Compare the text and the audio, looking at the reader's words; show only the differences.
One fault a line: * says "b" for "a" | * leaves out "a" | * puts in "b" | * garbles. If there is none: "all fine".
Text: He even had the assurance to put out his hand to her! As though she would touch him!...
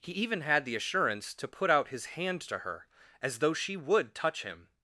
all fine